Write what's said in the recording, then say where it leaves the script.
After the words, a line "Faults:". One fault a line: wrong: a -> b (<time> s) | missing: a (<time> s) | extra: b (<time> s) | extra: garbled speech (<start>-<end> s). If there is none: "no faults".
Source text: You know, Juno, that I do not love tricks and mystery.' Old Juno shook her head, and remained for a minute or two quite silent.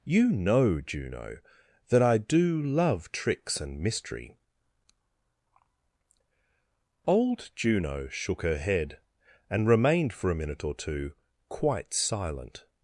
You know, Juno, that I do love tricks and mystery.' Old Juno shook her head, and remained for a minute or two quite silent.
Faults:
missing: not (2.6 s)